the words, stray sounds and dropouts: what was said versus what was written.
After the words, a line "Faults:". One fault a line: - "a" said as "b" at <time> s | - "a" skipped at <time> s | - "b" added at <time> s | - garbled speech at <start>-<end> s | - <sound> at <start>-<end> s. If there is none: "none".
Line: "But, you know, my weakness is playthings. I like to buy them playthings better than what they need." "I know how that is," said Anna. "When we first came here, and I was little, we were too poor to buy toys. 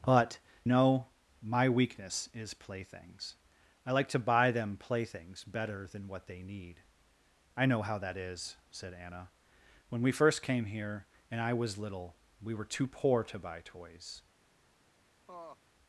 "But, know, my weakness is playthings. I like to buy them playthings better than what they need." "I know how that is," said Anna. "When we first came here, and I was little, we were too poor to buy toys.
Faults:
- "you" skipped at 0.4 s
- laugh at 15.3-15.6 s